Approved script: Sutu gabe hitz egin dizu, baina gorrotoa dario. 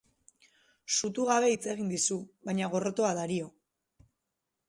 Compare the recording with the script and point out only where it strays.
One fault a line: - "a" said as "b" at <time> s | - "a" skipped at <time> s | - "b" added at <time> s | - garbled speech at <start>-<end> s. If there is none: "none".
none